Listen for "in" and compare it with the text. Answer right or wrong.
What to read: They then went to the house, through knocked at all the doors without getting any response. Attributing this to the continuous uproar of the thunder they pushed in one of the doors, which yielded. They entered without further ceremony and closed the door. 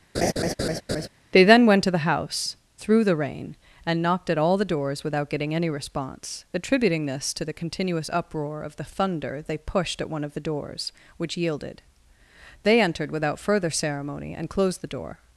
wrong